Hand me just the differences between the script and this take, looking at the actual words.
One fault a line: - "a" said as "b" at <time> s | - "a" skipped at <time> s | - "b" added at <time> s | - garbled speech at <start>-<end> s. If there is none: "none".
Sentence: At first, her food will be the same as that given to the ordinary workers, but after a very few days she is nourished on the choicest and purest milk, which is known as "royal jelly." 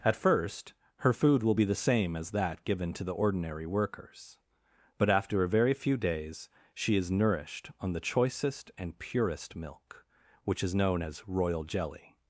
none